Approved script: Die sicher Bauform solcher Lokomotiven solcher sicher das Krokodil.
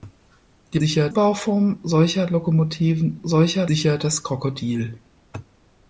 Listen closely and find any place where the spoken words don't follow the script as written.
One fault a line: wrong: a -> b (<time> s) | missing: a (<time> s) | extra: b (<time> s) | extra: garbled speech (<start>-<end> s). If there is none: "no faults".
no faults